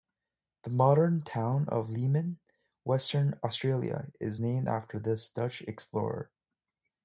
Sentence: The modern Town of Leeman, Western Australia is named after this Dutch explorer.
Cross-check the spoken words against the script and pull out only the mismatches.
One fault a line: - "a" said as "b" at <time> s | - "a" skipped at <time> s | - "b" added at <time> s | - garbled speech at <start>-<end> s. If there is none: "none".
none